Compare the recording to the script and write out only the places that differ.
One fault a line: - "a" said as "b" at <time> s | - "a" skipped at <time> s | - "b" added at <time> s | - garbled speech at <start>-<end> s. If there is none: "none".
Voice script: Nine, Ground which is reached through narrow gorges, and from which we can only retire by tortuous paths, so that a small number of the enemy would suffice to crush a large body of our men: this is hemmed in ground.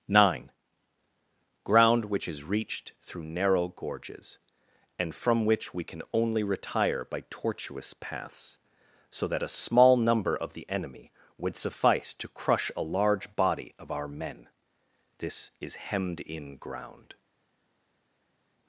none